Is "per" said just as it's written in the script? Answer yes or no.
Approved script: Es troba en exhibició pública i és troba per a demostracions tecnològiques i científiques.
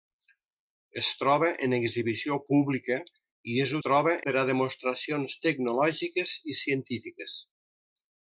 yes